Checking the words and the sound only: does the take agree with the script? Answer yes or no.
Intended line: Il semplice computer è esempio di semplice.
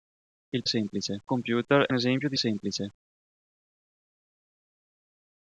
yes